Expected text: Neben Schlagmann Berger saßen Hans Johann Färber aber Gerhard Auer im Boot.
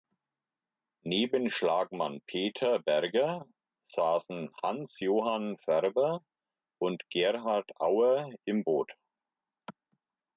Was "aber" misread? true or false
true